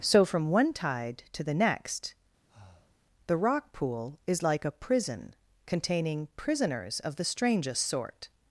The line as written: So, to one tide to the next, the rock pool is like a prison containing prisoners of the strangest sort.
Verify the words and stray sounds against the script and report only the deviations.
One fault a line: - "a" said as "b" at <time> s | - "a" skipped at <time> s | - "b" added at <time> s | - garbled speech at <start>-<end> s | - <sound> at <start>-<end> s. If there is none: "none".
- "to" said as "from" at 0.2 s
- breath at 2.5-3.0 s